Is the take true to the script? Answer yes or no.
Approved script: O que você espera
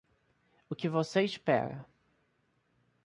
yes